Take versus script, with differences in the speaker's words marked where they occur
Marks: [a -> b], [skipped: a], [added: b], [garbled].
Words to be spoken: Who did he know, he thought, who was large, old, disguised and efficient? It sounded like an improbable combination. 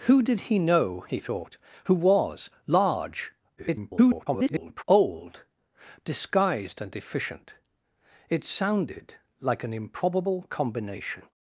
Who did he know, he thought, who was large, [garbled] old, disguised and efficient? It sounded like an improbable combination.